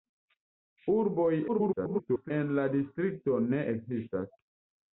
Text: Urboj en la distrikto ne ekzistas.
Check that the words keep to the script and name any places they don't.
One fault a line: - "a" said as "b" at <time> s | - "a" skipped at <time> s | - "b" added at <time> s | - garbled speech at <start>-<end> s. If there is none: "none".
- garbled speech at 1.5-2.3 s